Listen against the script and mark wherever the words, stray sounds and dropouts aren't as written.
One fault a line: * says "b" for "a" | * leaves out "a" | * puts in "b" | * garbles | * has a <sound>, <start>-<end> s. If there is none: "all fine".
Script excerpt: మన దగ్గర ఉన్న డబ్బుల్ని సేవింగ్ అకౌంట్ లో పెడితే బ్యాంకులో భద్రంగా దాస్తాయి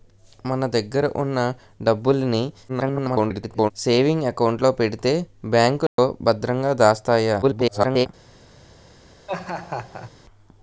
* garbles
* has a dropout, 5.9-6.0 s
* garbles
* has a laugh, 9.3-10.1 s